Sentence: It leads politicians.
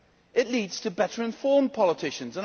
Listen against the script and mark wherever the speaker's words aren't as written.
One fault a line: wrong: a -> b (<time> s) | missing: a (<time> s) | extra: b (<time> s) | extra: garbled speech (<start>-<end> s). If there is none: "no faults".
extra: to better informed (0.8 s)